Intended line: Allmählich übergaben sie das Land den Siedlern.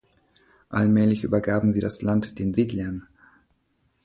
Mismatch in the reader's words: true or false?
false